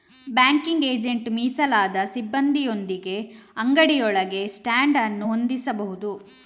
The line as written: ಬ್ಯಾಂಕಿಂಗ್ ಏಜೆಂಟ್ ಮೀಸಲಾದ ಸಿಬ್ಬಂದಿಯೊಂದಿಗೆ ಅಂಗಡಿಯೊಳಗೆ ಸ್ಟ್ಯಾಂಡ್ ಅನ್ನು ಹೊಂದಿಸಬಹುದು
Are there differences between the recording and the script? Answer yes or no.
no